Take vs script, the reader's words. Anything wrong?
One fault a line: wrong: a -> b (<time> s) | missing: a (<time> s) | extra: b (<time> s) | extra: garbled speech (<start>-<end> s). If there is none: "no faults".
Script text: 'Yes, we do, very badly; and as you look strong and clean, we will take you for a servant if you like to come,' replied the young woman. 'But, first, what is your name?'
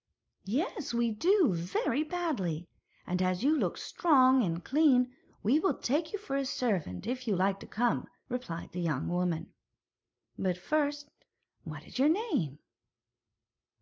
no faults